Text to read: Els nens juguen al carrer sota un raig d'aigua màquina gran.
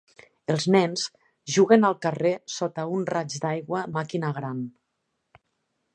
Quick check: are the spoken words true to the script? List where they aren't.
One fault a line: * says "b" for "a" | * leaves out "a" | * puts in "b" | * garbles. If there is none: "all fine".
all fine